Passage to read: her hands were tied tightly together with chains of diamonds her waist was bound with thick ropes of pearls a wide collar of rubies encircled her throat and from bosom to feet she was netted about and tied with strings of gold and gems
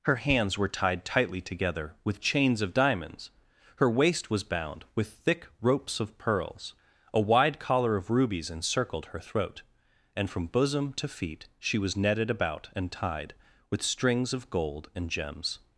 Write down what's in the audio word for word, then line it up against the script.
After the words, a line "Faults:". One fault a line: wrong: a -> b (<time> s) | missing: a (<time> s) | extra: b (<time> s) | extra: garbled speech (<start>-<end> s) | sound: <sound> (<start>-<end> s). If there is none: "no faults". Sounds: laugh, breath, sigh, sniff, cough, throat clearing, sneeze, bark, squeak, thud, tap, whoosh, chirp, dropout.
her hands were tied tightly together with chains of diamonds her waist was bound with thick ropes of pearls a wide collar of rubies encircled her throat and from bosom to feet she was netted about and tied with strings of gold and gems
Faults:
no faults